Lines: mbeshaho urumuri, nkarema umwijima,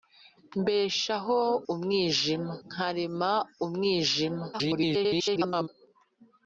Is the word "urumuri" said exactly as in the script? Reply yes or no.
no